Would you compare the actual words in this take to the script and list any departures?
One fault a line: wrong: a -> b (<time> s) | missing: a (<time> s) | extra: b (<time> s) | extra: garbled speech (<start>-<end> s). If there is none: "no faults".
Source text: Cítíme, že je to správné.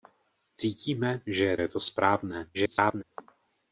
extra: je (1.6 s)
extra: garbled speech (2.5-3.0 s)